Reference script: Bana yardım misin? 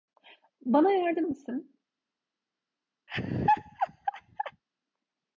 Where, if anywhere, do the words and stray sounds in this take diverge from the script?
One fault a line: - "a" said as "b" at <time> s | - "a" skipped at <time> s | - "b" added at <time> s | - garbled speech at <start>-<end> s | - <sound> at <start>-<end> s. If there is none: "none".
- laugh at 3.1-4.6 s